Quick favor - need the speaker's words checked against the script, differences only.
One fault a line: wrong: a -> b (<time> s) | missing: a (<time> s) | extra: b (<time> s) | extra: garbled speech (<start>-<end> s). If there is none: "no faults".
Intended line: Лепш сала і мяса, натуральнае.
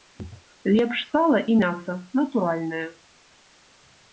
no faults